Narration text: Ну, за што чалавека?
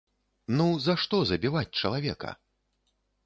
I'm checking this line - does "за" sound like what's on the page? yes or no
yes